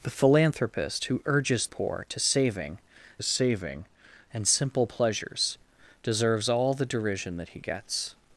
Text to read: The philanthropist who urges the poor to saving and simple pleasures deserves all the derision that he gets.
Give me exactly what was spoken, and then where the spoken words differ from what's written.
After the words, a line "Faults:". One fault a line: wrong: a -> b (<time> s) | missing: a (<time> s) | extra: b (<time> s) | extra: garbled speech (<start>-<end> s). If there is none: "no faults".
The philanthropist who urges poor to saving saving and simple pleasures deserves all the derision that he gets.
Faults:
missing: the (1.7 s)
extra: saving (3.2 s)